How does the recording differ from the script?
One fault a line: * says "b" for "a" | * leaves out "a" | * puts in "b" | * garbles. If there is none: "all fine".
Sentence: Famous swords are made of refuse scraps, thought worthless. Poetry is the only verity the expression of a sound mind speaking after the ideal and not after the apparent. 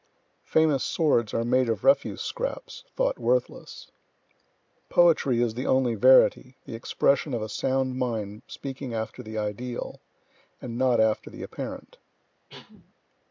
all fine